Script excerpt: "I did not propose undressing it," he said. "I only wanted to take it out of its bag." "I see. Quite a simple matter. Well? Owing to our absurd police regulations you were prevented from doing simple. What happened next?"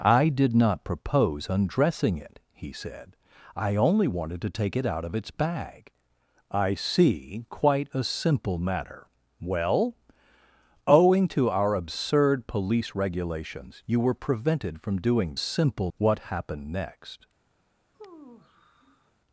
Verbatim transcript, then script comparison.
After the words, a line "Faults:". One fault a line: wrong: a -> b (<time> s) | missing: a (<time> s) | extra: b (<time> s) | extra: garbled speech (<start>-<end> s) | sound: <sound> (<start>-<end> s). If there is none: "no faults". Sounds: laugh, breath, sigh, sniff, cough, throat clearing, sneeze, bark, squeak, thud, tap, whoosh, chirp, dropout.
"I did not propose undressing it," he said. "I only wanted to take it out of its bag." "I see. Quite a simple matter. Well? Owing to our absurd police regulations you were prevented from doing simple. What happened next?"
Faults:
sound: sigh (17.9-19.1 s)